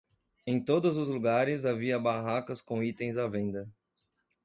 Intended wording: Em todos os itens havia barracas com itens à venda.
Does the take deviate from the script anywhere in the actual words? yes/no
yes